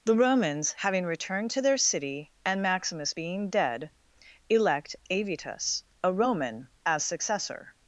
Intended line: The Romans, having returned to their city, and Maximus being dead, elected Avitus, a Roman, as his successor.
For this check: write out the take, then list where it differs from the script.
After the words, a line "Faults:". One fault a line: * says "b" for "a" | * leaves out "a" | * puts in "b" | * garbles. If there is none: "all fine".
The Romans, having returned to their city, and Maximus being dead, elect Avitus, a Roman, as successor.
Faults:
* says "elect" for "elected"
* leaves out "his"